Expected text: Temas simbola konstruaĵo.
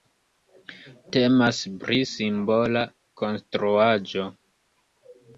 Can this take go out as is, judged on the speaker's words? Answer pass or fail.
fail